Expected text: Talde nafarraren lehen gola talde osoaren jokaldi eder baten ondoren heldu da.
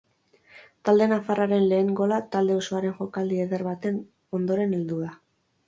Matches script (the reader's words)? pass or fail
pass